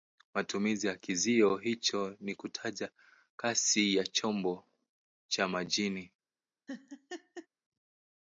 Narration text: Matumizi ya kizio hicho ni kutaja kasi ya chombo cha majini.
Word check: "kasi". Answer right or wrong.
right